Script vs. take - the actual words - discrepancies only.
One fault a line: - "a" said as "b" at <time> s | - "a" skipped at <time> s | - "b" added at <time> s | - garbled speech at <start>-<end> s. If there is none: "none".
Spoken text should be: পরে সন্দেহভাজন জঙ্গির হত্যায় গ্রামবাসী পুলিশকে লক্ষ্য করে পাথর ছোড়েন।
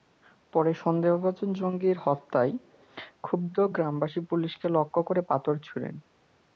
- "ক্ষুব্ধ" added at 3.2 s